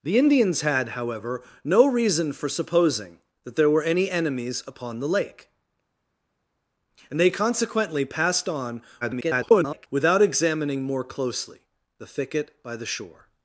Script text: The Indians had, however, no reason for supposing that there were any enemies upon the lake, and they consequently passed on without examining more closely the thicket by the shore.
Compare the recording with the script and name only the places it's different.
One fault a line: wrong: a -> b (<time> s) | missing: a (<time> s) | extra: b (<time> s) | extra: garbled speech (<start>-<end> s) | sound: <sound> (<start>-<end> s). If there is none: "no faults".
extra: garbled speech (9.0-9.9 s)